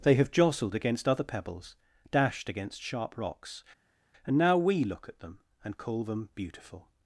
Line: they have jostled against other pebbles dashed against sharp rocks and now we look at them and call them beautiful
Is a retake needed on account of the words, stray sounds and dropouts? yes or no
no